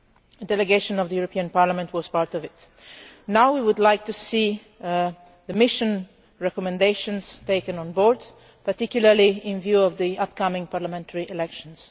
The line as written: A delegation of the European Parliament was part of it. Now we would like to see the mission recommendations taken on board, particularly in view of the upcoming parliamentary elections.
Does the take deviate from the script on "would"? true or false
false